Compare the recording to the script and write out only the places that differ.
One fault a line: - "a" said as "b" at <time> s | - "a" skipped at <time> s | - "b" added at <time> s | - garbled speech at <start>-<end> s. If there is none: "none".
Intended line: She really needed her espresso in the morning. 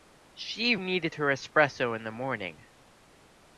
- "really" skipped at 0.8 s